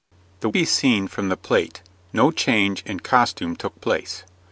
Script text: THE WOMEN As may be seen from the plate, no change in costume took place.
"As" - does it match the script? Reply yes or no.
no